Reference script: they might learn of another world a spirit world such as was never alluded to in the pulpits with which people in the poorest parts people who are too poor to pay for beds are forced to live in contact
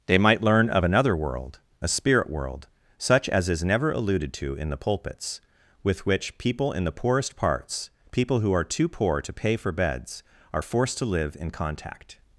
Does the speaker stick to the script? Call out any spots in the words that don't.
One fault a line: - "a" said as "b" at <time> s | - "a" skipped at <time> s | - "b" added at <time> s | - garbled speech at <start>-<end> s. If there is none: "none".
- "was" said as "is" at 3.5 s